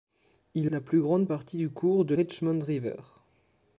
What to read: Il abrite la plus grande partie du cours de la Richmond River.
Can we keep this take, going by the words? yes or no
no